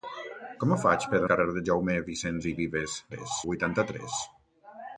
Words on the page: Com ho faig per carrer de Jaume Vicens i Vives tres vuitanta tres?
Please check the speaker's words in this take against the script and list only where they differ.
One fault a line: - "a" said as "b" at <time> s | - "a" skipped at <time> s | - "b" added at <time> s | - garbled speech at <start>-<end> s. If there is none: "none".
none